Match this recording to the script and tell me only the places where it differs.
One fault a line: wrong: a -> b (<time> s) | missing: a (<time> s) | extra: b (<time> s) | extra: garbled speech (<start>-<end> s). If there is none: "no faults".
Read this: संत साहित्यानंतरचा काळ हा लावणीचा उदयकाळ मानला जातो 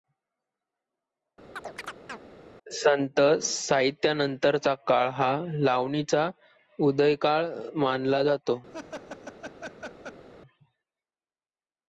no faults